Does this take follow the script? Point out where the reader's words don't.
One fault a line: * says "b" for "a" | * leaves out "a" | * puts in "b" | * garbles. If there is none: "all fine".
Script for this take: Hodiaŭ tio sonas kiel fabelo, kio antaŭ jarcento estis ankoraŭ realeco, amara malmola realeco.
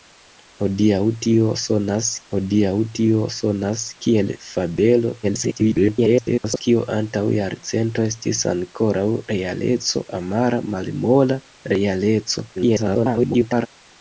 * puts in "hodiaŭ tio sonas"
* garbles
* garbles